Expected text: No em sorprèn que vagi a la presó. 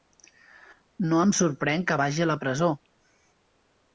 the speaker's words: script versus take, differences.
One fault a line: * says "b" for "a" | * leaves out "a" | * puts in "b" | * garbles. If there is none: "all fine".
all fine